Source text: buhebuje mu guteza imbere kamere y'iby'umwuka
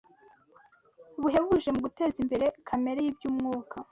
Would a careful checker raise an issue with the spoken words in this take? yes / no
no